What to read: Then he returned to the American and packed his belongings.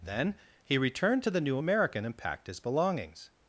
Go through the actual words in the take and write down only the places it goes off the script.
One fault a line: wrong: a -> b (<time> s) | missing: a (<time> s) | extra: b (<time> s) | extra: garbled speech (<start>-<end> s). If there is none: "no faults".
extra: New (1.4 s)